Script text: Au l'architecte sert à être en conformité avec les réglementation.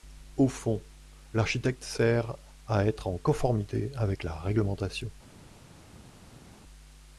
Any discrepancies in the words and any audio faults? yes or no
yes